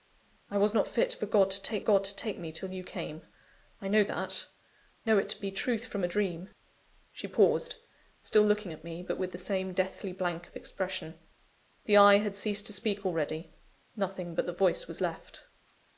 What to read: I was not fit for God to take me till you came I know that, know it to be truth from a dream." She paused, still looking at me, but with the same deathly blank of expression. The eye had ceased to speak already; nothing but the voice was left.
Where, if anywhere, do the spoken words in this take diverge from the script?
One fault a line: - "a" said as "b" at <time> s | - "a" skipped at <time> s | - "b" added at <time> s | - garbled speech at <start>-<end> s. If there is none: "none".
- "God to take" added at 1.8 s